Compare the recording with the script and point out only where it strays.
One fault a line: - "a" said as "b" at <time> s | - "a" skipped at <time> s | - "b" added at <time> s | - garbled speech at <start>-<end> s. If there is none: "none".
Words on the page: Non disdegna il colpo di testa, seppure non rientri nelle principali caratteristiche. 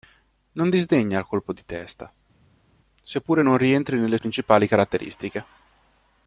none